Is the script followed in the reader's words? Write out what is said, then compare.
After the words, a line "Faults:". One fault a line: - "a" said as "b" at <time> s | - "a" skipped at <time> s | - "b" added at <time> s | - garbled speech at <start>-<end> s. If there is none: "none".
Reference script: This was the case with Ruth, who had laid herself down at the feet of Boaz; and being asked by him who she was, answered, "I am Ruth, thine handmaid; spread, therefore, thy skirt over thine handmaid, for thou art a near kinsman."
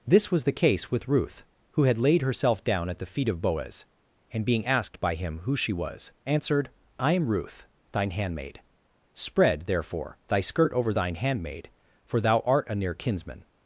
This was the case with Ruth, who had laid herself down at the feet of Boaz; and being asked by him who she was, answered, "I am Ruth, thine handmaid; spread, therefore, thy skirt over thine handmaid, for thou art a near kinsman."
Faults:
none